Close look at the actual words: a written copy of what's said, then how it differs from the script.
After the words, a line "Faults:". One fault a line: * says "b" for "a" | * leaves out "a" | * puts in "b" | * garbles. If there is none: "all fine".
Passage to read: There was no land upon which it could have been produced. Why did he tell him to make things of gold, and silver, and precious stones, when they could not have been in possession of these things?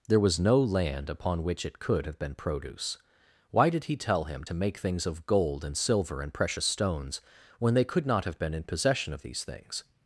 There was no land upon which it could have been produce. Why did he tell him to make things of gold, and silver, and precious stones, when they could not have been in possession of these things?
Faults:
* says "produce" for "produced"